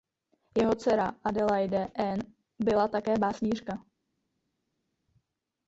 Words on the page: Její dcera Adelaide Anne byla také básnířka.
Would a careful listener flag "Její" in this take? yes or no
yes